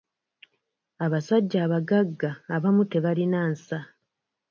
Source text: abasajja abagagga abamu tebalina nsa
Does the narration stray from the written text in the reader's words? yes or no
no